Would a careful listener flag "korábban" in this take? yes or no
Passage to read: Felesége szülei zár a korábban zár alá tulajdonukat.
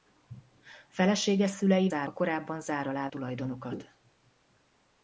no